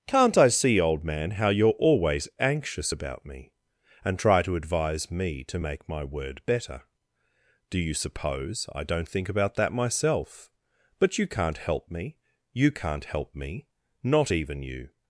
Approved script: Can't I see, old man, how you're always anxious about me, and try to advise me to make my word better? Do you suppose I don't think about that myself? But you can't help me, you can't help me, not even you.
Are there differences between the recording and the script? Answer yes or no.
no